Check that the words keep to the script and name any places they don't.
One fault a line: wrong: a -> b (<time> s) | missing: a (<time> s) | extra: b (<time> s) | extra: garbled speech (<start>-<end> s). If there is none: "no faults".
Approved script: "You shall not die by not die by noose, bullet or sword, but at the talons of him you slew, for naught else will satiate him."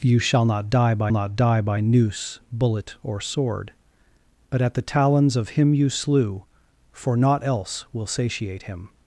no faults